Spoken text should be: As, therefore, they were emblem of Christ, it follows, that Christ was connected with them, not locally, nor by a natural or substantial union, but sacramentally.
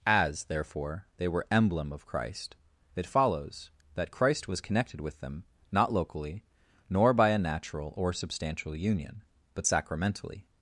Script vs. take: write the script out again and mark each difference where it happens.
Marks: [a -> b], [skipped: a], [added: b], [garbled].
As, therefore, they were emblem of Christ, it follows, that Christ was connected with them, not locally, nor by a natural or substantial union, but sacramentally.